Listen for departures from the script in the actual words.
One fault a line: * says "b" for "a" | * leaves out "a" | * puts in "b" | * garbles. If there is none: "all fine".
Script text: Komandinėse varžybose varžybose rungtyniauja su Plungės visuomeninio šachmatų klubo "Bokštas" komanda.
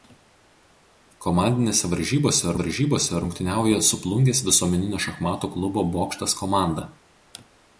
all fine